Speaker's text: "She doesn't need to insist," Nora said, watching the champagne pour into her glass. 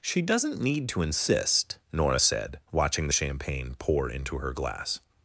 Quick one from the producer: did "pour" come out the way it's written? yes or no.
yes